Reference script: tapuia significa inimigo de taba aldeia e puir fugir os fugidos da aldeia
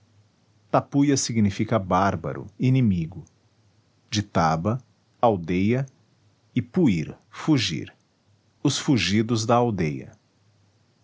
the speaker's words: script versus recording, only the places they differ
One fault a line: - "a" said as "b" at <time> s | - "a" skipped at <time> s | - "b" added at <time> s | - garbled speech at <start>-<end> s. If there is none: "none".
- "bárbaro" added at 1.8 s